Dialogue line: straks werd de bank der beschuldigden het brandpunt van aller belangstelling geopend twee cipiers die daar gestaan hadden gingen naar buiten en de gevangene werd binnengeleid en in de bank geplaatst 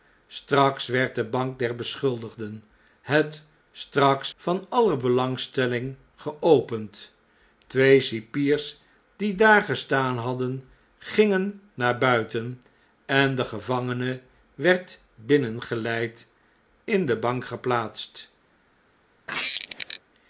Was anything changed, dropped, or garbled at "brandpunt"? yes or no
yes